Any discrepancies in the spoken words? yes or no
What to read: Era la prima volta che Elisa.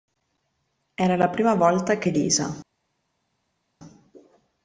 no